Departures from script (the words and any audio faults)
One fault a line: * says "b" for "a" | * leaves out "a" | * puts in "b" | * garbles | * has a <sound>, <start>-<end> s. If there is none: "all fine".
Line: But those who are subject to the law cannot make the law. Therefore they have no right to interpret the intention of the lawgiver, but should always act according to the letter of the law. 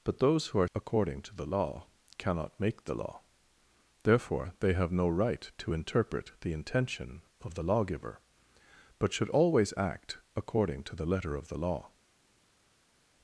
* says "according" for "subject"